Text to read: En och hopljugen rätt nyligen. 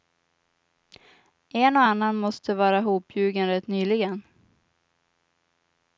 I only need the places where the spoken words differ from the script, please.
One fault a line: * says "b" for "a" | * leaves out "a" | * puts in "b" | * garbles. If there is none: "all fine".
* puts in "annan måste vara"